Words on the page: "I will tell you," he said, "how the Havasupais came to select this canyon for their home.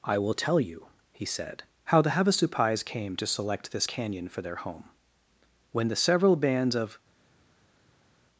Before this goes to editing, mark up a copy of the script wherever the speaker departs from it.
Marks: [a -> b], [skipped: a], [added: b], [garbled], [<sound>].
"I will tell you," he said, "how the Havasupais came to select this canyon for their home. [added: When the several bands of]